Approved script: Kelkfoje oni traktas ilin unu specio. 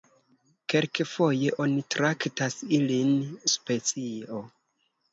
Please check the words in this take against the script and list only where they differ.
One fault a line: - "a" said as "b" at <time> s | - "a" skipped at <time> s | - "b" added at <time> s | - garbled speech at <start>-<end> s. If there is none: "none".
- "unu" skipped at 3.1 s